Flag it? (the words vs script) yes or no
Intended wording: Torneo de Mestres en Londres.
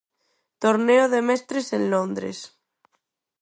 no